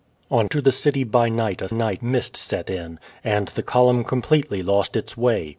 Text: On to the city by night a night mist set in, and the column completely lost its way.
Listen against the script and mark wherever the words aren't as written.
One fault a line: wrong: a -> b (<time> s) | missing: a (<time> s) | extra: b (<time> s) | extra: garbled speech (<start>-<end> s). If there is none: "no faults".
no faults